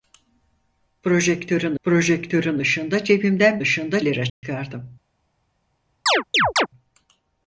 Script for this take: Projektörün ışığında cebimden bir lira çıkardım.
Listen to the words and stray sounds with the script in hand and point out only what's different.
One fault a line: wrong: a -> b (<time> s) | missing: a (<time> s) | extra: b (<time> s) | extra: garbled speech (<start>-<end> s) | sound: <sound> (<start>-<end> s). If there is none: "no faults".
extra: projektörün (1.8 s)
wrong: bir -> ışığında (3.6 s)
sound: dropout (4.3-4.4 s)
sound: chirp (6.1-6.7 s)